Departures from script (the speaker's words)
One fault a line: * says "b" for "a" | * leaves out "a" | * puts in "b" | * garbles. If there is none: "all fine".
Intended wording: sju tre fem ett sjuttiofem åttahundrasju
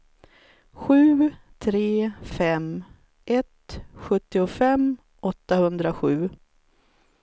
all fine